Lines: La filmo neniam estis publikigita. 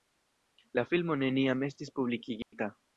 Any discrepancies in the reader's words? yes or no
no